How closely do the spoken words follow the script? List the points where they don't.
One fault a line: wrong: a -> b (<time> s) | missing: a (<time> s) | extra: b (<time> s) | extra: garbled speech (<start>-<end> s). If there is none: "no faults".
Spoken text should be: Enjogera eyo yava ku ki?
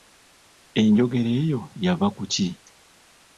no faults